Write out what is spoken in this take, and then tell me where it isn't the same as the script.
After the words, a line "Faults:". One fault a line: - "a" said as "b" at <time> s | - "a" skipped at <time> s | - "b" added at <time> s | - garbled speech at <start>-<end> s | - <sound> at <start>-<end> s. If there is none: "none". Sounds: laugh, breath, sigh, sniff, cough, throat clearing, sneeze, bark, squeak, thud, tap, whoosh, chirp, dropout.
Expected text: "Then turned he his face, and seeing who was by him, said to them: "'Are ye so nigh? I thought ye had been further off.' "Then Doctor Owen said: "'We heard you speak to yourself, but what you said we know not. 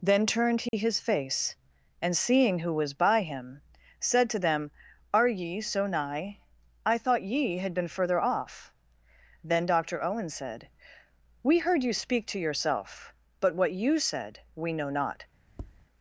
"Then turned he his face, and seeing who was by him, said to them: "'Are ye so nigh? I thought ye had been further off.' "Then Doctor Owen said: "'We heard you speak to yourself, but what you said we know not.
Faults:
- dropout at 0.7-0.7 s
- tap at 15.5-15.9 s